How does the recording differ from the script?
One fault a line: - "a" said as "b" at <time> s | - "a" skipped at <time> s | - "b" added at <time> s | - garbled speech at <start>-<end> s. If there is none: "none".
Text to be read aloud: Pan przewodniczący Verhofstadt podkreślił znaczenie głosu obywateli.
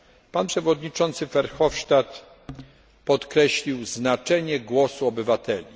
none